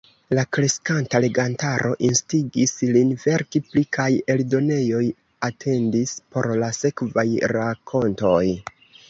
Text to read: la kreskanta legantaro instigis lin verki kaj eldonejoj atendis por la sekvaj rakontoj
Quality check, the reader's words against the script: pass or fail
fail